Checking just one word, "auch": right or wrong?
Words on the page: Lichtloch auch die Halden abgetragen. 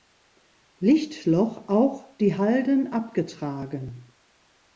right